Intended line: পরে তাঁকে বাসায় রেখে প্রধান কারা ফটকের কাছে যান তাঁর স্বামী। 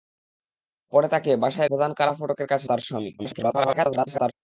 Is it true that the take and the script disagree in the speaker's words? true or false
true